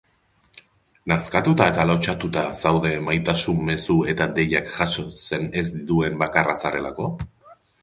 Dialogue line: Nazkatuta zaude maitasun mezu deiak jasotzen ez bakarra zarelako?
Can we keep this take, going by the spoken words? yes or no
no